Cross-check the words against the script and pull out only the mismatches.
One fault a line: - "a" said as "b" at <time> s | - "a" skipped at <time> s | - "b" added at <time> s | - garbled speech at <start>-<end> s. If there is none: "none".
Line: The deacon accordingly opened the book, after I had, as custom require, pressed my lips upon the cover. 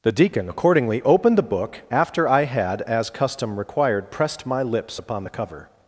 - "require" said as "required" at 3.6 s